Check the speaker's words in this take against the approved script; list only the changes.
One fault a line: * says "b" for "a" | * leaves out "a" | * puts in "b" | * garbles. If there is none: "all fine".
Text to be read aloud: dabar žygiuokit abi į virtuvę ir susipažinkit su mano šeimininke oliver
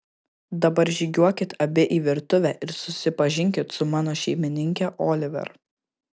all fine